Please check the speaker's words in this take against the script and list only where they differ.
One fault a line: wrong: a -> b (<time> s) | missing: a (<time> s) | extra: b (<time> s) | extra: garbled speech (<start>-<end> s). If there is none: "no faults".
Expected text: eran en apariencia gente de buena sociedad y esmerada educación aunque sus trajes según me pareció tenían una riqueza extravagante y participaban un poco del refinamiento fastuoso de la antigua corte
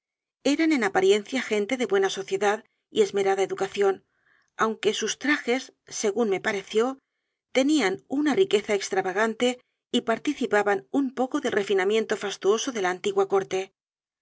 no faults